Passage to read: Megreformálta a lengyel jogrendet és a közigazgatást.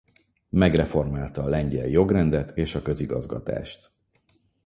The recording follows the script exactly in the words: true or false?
true